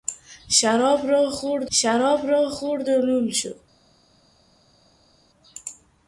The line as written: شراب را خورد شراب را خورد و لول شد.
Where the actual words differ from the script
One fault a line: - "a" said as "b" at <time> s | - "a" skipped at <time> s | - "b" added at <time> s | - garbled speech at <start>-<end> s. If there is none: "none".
none